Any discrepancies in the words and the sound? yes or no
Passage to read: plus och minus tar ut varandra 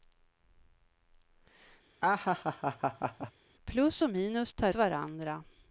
yes